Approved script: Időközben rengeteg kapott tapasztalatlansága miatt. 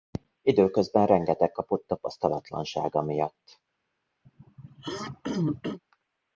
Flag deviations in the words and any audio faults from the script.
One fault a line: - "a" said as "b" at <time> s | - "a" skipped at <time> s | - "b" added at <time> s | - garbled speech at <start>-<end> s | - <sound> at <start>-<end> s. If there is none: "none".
- throat clearing at 4.2-5.8 s